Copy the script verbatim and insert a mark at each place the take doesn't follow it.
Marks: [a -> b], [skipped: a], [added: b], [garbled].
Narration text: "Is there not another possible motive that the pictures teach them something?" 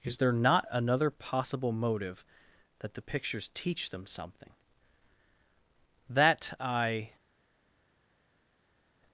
"Is there not another possible motive that the pictures teach them something?" [added: That I]